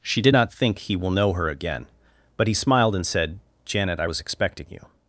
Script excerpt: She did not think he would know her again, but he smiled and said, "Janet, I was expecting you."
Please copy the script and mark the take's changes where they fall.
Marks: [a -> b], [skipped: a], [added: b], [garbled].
She did not think he [would -> will] know her again, but he smiled and said, "Janet, I was expecting you."